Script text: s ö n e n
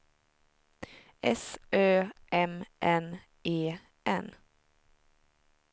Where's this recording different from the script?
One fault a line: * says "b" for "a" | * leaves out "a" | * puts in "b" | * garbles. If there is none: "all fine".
* puts in "m"